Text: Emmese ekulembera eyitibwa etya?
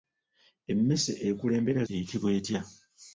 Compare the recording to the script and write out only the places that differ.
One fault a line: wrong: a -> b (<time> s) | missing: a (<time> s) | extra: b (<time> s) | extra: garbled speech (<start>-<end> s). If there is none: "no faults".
no faults